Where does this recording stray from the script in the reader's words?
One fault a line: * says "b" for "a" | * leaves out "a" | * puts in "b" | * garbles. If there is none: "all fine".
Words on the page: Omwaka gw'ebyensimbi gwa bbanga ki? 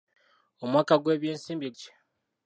* leaves out "gwa bbanga"